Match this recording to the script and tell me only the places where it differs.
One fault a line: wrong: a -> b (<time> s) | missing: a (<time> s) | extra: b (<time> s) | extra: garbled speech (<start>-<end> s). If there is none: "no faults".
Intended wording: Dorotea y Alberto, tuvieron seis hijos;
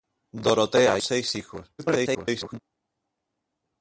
missing: y Alberto tuvieron (1.0 s)
extra: garbled speech (1.8-2.6 s)